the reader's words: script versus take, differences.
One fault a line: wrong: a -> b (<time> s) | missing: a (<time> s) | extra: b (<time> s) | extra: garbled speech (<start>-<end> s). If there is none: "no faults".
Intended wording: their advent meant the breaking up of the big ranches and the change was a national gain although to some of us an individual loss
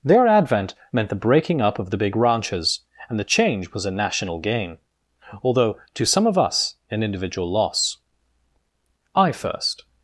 extra: i first (9.1 s)